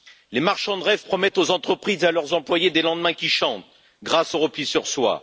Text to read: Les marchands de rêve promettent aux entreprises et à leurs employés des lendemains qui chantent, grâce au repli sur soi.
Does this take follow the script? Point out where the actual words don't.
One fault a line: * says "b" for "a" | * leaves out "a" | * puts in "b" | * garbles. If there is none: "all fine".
all fine